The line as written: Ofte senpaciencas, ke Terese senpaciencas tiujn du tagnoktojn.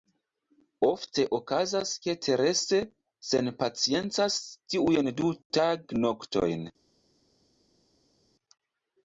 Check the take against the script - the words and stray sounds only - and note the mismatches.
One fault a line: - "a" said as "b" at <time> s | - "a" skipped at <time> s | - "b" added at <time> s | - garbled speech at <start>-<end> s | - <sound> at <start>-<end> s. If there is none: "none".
- "senpaciencas" said as "okazas" at 1.4 s